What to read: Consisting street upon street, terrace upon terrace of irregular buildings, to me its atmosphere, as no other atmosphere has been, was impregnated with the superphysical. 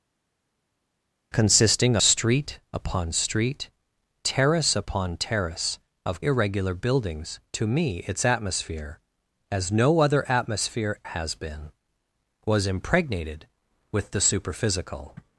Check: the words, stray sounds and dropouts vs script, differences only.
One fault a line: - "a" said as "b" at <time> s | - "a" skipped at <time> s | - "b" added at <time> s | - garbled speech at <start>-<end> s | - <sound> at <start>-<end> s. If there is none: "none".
none